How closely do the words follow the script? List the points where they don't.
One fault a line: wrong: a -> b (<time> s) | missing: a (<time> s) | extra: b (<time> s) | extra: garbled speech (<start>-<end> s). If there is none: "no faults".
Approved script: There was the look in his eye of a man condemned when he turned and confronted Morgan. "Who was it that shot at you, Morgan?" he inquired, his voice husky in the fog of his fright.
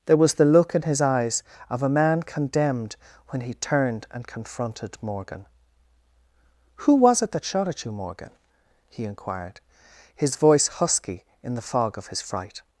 wrong: eye -> eyes (1.0 s)